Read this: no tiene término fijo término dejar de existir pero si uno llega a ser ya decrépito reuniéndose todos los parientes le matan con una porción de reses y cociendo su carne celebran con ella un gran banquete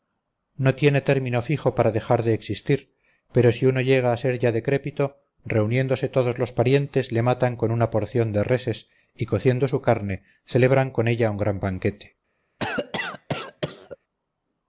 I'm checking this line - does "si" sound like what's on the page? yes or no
yes